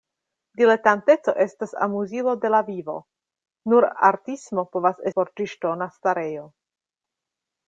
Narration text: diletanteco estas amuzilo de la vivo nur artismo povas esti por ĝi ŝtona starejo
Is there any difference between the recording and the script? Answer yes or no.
yes